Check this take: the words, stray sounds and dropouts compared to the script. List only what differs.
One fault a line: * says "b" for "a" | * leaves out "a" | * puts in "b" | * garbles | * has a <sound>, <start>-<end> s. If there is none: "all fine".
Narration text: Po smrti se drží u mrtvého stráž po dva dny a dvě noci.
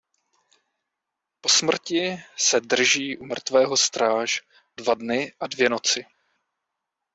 * leaves out "po"